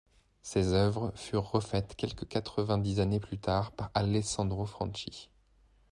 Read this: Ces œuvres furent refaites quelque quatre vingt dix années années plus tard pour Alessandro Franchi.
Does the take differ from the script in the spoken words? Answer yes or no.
yes